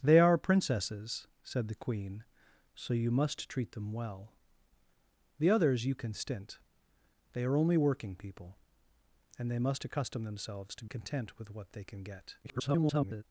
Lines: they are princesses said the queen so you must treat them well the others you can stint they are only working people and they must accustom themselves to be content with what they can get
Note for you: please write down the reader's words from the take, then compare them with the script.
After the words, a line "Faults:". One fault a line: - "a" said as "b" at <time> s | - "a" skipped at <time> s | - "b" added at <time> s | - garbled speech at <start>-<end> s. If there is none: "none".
they are princesses said the queen so you must treat them well the others you can stint they are only working people and they must accustom themselves to content with what they can get [garbled]
Faults:
- "be" skipped at 10.8 s
- garbled speech at 12.4-13.2 s